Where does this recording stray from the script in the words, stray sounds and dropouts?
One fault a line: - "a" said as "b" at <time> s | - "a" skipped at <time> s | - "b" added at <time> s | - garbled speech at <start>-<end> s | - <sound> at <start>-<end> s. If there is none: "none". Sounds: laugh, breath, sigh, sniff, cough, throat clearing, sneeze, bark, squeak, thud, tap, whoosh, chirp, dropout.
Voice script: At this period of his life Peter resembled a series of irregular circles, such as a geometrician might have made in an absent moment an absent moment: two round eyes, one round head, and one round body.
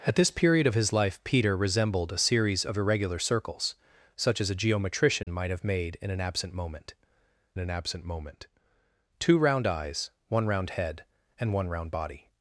- dropout at 5.2-5.3 s